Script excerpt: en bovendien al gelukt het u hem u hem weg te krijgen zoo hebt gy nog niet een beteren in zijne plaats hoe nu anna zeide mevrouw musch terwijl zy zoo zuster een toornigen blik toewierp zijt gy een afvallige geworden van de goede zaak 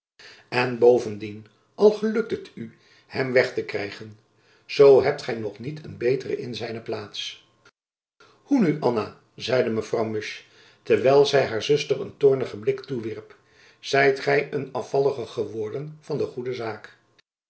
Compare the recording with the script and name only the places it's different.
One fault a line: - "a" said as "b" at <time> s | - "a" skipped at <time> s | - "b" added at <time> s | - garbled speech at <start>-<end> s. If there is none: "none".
- "u hem" skipped at 3.3 s
- "zoo" said as "haar" at 11.4 s